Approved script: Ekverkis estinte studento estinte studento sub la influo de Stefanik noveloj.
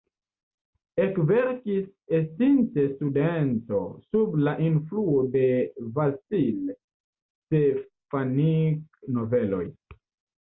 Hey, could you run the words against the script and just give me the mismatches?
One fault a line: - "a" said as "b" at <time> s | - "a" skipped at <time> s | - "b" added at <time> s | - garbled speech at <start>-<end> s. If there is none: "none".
- "estinte studento" skipped at 3.8 s
- "Vasil" added at 6.0 s